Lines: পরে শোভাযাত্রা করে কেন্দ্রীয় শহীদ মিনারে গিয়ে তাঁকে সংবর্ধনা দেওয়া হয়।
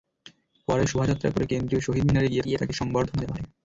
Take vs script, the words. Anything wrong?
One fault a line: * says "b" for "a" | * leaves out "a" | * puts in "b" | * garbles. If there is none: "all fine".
* puts in "গিয়ে"